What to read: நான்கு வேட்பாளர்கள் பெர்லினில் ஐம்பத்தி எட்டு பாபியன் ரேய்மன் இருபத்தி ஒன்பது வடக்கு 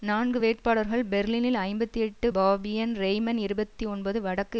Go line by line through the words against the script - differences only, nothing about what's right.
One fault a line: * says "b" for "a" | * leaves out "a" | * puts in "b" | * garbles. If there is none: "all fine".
all fine